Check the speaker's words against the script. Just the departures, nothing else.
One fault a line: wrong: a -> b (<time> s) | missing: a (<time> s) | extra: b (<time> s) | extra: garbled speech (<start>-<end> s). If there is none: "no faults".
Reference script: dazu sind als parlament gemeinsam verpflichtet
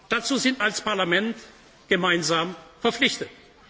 no faults